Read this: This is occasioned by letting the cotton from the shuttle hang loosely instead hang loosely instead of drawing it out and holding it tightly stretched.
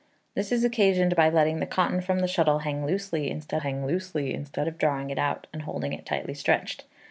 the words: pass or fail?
pass